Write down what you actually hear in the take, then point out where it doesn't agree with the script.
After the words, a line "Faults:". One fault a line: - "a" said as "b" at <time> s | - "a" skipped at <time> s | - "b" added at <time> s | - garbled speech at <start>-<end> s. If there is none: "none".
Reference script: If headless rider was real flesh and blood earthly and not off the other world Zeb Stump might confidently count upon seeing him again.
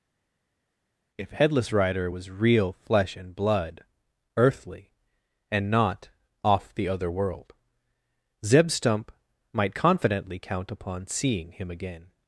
If headless rider was real flesh and blood earthly and not off the other world Zeb Stump might confidently count upon seeing him again.
Faults:
none